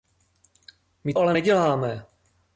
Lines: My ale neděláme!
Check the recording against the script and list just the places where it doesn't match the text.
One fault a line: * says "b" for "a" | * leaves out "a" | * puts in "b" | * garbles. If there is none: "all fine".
all fine